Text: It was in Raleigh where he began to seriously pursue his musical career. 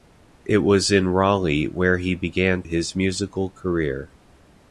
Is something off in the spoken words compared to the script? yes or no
yes